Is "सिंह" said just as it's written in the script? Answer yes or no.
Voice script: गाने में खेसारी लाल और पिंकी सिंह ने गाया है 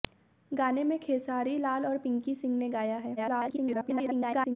yes